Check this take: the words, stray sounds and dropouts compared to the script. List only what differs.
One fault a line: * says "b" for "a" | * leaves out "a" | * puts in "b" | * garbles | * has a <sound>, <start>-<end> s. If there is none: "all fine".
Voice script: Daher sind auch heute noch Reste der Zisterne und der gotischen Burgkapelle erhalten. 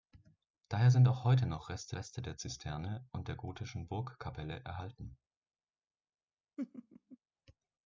* puts in "Reste"
* has a laugh, 6.6-7.2 s